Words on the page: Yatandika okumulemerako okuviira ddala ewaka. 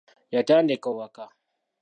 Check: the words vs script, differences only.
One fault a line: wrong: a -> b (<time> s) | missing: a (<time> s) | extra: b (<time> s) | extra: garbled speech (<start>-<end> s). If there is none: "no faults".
missing: okumulemerako okuviira ddala (0.9 s)